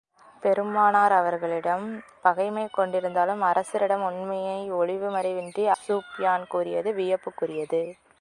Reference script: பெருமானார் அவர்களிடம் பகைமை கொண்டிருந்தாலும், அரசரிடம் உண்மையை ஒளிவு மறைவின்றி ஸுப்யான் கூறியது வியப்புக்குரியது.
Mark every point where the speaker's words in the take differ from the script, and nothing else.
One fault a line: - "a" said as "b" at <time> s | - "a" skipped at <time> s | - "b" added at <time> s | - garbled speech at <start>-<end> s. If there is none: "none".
none